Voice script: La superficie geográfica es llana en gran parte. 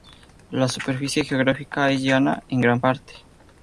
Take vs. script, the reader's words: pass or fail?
pass